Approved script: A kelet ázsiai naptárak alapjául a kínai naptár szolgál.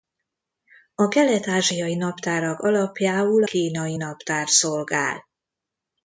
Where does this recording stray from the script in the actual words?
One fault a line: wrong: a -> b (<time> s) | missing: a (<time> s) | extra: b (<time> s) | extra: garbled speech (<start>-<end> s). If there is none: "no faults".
missing: a (3.4 s)